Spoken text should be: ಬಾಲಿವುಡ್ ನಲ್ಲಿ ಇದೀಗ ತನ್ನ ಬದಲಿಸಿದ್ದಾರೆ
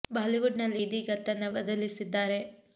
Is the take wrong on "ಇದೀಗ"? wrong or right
right